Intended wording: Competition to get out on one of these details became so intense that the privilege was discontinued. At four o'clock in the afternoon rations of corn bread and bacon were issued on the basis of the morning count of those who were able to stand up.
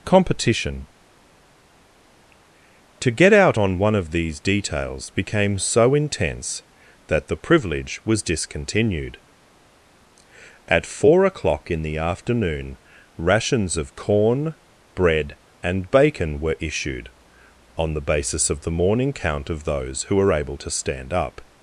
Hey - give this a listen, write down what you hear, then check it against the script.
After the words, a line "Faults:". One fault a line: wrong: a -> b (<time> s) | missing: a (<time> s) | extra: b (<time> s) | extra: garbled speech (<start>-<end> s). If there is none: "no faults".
Competition to get out on one of these details became so intense that the privilege was discontinued. At four o'clock in the afternoon rations of corn bread and bacon were issued on the basis of the morning count of those who were able to stand up.
Faults:
no faults